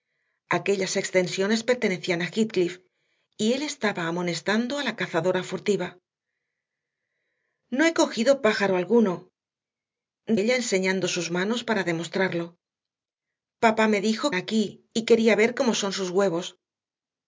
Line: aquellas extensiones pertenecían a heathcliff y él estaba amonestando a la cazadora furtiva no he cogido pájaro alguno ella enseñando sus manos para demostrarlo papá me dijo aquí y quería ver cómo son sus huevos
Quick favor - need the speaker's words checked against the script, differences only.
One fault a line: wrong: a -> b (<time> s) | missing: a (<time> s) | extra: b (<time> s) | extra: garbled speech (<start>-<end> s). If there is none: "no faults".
no faults